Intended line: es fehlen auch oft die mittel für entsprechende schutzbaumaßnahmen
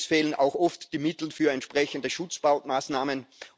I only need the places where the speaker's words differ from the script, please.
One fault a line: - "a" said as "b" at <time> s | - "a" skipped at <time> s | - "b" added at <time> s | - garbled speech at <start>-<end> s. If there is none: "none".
none